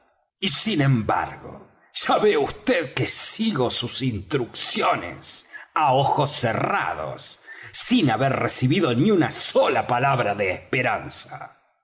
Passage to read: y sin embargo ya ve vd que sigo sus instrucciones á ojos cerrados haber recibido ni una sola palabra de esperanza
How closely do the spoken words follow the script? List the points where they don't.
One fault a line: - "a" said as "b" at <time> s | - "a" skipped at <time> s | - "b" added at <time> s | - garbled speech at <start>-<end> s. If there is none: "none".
- "sin" added at 7.7 s